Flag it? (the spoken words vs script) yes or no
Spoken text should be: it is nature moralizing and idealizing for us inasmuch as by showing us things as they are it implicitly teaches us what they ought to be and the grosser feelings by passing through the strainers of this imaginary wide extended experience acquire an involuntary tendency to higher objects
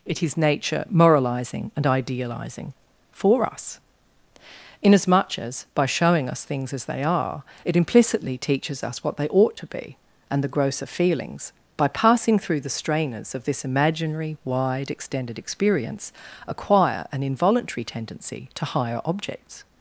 no